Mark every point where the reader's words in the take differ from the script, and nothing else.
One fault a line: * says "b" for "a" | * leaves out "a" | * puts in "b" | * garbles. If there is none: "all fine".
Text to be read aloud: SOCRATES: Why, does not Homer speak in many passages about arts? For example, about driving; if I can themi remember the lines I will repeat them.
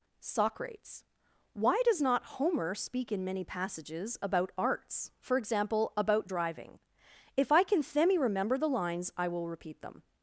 all fine